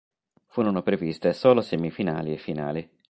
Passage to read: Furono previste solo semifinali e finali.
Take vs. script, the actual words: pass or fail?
pass